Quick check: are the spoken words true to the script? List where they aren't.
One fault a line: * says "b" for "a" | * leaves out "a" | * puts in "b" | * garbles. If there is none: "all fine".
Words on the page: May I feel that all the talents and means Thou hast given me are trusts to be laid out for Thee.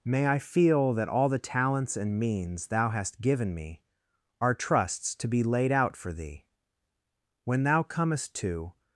* puts in "When thou comest to"